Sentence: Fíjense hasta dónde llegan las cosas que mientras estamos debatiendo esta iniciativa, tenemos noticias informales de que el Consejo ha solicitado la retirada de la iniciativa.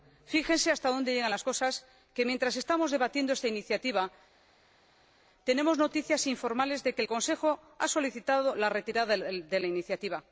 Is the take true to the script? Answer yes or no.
yes